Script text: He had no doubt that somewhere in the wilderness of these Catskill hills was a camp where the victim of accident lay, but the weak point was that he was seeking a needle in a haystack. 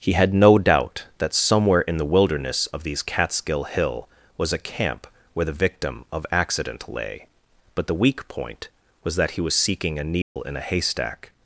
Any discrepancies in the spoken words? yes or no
yes